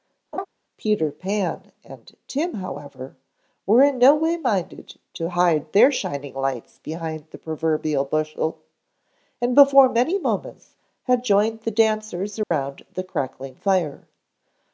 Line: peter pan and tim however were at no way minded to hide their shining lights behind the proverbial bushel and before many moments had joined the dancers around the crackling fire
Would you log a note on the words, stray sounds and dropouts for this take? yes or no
yes